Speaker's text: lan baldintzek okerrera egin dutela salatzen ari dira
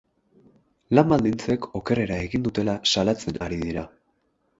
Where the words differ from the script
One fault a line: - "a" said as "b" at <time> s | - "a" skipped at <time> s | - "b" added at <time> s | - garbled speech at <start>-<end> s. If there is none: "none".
none